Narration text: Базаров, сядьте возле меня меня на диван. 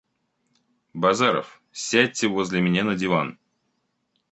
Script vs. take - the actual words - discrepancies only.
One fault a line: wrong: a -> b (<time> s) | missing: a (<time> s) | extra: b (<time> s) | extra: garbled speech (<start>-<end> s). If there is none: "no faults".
missing: меня (2.8 s)